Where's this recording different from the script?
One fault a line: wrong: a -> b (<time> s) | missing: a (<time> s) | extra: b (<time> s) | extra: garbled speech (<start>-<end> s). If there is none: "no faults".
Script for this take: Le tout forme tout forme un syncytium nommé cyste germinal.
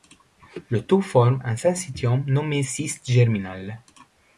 missing: tout forme (1.4 s)